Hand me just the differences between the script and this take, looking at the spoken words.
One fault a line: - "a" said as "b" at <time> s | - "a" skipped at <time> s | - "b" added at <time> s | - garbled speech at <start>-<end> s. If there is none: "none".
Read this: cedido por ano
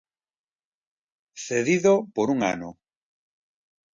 - "un" added at 2.3 s